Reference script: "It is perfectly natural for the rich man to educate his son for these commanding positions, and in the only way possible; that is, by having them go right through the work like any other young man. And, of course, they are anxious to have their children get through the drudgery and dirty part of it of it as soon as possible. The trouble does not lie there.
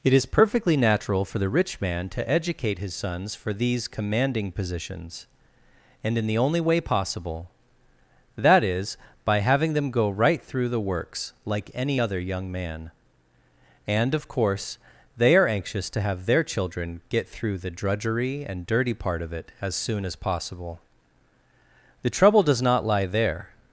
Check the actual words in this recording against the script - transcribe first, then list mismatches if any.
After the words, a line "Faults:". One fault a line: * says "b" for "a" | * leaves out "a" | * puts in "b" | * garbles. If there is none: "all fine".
"It is perfectly natural for the rich man to educate his sons for these commanding positions, and in the only way possible; that is, by having them go right through the works like any other young man. And, of course, they are anxious to have their children get through the drudgery and dirty part of it as soon as possible. The trouble does not lie there.
Faults:
* says "sons" for "son"
* says "works" for "work"
* leaves out "of it"